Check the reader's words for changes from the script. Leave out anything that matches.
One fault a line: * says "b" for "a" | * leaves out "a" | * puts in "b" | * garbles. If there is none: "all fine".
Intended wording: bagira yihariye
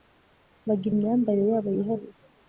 * puts in "imyambarire yabo"